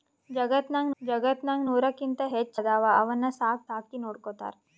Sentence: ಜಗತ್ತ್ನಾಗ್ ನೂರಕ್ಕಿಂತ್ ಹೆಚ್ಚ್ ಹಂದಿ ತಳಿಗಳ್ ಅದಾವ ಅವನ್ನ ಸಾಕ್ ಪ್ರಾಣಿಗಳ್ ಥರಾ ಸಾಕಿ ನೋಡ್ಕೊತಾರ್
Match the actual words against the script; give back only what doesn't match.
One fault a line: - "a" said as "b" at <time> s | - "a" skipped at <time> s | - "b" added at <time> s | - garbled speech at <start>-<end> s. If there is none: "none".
- "ಜಗತ್ತ್ನಾಗ್" added at 1.0 s
- "ಹಂದಿ ತಳಿಗಳ್" skipped at 2.6 s
- "ಪ್ರಾಣಿಗಳ್ ಥರಾ" skipped at 3.7 s